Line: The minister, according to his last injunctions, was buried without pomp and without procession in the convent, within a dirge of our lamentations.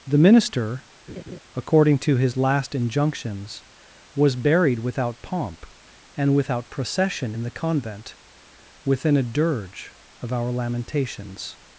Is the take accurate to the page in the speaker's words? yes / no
yes